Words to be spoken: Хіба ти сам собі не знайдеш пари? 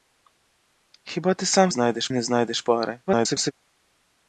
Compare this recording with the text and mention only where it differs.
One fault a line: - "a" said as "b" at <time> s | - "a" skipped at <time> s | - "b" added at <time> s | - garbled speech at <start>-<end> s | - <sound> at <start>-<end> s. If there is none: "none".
- "собі" said as "знайдеш" at 1.7 s
- garbled speech at 3.1-3.5 s